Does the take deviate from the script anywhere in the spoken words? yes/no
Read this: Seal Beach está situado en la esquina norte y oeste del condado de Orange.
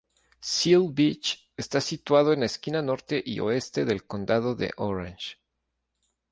no